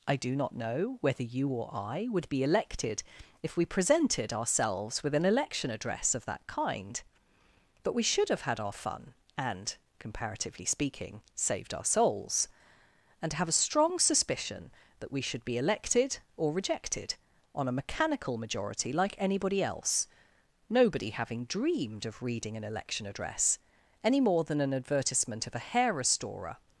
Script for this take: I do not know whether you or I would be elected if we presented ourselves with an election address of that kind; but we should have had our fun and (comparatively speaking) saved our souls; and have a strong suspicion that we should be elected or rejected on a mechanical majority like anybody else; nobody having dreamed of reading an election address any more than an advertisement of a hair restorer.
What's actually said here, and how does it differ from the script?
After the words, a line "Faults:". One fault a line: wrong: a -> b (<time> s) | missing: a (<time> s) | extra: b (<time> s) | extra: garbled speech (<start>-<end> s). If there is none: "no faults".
I do not know whether you or I would be elected if we presented ourselves with an election address of that kind; but we should have had our fun and (comparatively speaking) saved our souls; and have a strong suspicion that we should be elected or rejected on a mechanical majority like anybody else; nobody having dreamed of reading an election address any more than an advertisement of a hair restorer.
Faults:
no faults